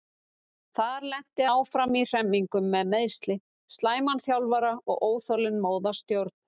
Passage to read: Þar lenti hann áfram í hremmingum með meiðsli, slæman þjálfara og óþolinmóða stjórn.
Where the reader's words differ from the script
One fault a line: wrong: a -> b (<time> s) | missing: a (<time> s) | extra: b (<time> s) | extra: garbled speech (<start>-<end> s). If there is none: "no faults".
missing: hann (1.4 s)